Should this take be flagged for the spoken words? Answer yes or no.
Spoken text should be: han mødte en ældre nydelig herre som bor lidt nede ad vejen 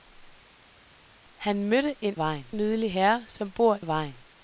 yes